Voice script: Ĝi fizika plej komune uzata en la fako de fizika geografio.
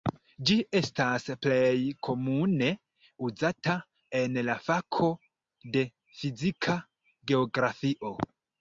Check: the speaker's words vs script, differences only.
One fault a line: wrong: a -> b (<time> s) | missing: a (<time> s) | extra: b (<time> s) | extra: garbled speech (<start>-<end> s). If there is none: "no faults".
wrong: fizika -> estas (0.8 s)